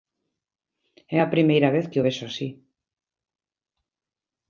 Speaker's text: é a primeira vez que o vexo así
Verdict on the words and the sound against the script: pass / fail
pass